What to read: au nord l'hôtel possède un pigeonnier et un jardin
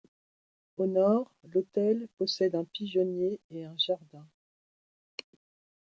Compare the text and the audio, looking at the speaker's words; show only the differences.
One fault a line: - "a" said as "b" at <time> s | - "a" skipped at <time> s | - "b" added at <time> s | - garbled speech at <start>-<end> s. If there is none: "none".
none